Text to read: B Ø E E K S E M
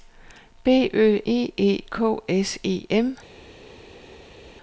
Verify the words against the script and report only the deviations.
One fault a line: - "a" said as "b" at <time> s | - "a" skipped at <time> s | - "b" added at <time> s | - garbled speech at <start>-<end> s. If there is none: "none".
none